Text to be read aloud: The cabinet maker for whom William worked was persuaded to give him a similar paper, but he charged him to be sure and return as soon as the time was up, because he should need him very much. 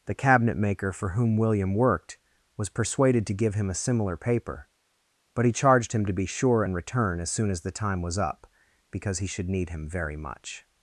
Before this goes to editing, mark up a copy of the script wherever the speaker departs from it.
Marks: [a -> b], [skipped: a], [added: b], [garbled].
The cabinet maker for whom William worked was persuaded to give him a similar paper, but he charged him to be sure and return as soon as the time was up, because he should need him very much.